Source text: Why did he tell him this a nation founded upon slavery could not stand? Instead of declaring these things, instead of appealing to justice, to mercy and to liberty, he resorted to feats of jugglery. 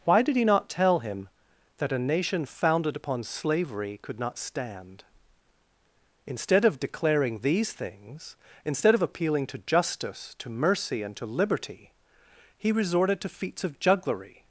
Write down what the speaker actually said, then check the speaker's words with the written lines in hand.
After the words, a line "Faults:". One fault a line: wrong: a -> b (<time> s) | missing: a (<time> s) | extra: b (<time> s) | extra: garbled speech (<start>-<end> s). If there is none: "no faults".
Why did he not tell him that a nation founded upon slavery could not stand? Instead of declaring these things, instead of appealing to justice, to mercy and to liberty, he resorted to feats of jugglery.
Faults:
extra: not (0.5 s)
wrong: this -> that (1.8 s)